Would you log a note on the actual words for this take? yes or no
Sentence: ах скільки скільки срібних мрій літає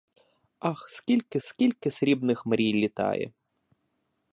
no